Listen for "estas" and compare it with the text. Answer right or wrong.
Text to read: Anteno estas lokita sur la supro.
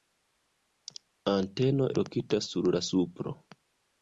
wrong